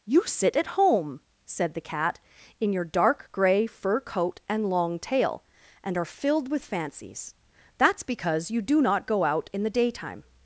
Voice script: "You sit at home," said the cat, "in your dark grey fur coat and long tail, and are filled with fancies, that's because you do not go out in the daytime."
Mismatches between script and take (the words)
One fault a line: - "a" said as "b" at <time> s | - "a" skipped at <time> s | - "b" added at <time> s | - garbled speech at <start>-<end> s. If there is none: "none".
none